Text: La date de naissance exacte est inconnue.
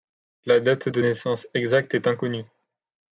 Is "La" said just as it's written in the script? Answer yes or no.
yes